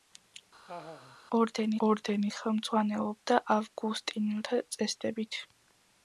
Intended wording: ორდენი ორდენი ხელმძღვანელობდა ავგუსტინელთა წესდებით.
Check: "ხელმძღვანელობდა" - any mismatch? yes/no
no